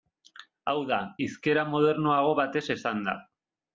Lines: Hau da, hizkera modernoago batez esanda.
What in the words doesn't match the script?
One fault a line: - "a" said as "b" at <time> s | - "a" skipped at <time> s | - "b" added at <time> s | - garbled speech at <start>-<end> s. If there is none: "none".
none